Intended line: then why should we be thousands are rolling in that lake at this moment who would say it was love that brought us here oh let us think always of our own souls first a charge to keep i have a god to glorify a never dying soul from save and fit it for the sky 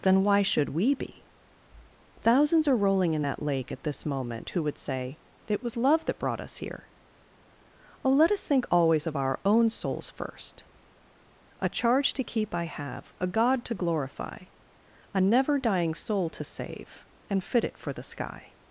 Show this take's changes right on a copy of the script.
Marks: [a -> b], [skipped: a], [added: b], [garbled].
then why should we be thousands are rolling in that lake at this moment who would say it was love that brought us here oh let us think always of our own souls first a charge to keep i have a god to glorify a never dying soul [from -> to] save and fit it for the sky